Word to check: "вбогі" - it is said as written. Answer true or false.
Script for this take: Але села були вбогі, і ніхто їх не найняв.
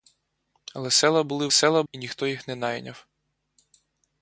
false